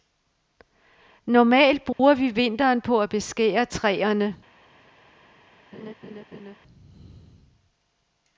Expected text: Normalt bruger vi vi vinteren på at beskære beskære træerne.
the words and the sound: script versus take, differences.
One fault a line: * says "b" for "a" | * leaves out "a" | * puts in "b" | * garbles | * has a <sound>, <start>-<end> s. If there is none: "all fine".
* has a dropout, 1.9-2.0 s
* leaves out "vi"
* leaves out "beskære"
* has a laugh, 5.7-6.6 s